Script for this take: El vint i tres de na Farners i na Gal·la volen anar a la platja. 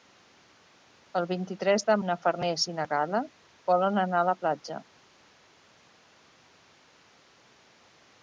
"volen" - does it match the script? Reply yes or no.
yes